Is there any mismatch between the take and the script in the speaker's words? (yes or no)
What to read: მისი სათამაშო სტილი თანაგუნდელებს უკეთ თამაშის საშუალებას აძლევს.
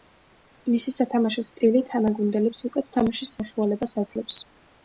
no